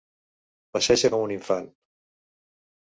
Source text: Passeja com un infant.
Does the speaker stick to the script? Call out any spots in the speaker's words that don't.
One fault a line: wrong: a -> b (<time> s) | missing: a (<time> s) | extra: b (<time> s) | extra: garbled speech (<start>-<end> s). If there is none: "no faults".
no faults